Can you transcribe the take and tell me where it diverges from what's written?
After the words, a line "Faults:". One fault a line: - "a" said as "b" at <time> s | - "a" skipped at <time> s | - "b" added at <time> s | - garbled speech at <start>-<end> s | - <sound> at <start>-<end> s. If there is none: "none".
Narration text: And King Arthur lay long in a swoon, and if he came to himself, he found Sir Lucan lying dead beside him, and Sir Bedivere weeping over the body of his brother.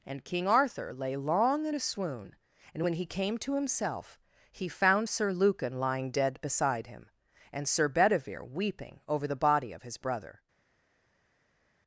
And King Arthur lay long in a swoon, and when he came to himself, he found Sir Lucan lying dead beside him, and Sir Bedivere weeping over the body of his brother.
Faults:
- "if" said as "when" at 2.8 s